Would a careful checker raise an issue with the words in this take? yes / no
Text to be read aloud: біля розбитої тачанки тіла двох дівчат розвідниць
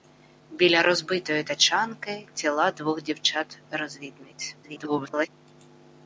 yes